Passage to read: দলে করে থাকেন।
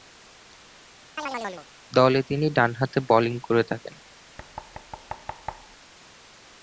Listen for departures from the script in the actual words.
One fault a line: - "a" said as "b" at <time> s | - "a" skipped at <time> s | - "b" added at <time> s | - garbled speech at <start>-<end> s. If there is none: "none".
- "তিনি ডানহাতে বোলিং" added at 2.2 s